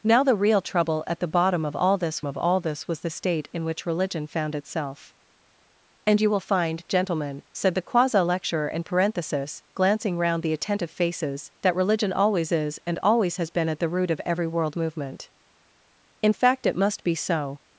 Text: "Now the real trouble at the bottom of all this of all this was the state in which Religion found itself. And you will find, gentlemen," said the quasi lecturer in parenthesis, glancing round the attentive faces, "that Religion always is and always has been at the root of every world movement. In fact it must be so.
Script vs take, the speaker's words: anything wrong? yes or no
no